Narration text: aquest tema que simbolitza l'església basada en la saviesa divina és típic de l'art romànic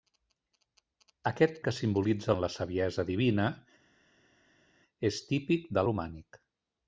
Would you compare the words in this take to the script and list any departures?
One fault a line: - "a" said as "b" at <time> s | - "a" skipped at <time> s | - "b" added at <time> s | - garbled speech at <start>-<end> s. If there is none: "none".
- "tema" skipped at 1.6 s
- "l'església basada" skipped at 2.3 s
- "l'art" skipped at 5.9 s